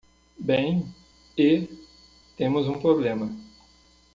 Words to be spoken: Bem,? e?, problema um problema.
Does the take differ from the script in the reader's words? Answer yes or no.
yes